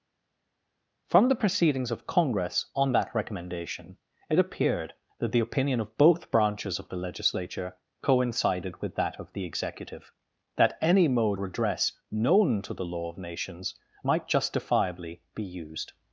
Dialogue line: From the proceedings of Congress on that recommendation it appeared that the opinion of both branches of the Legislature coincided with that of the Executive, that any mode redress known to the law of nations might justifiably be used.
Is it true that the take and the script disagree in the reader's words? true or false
false